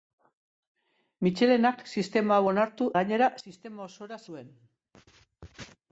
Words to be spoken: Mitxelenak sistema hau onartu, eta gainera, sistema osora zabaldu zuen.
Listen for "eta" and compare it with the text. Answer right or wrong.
wrong